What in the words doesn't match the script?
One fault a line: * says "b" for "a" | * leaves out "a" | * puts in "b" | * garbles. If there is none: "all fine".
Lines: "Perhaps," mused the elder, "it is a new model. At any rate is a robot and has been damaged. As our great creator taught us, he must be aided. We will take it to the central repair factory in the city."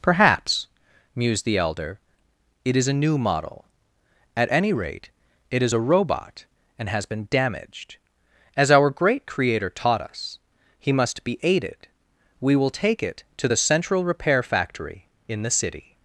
* puts in "it"